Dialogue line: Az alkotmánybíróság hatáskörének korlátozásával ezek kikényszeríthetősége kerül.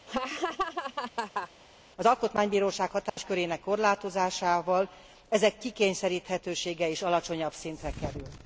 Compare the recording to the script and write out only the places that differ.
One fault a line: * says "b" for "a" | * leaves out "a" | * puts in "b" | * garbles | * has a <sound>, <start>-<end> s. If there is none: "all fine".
* has a laugh, 0.1-1.5 s
* has a dropout, 3.1-3.2 s
* puts in "is alacsonyabb szintre"